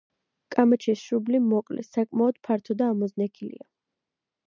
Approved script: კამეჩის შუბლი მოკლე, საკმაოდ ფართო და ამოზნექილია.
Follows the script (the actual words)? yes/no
yes